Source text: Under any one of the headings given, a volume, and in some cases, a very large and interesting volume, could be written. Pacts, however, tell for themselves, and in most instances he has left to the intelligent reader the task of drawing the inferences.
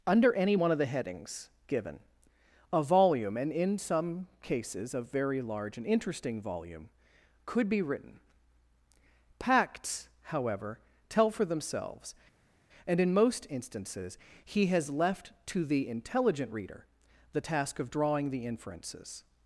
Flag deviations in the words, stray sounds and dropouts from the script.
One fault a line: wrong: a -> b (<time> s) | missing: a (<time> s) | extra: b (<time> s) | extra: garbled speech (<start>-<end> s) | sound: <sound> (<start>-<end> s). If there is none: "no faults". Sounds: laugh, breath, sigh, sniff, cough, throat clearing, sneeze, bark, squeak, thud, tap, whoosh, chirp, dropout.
no faults